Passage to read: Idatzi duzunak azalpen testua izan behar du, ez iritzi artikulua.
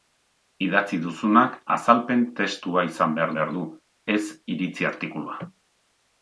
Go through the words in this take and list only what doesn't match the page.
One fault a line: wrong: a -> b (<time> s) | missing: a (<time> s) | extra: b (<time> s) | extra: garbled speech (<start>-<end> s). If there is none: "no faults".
extra: behar (3.4 s)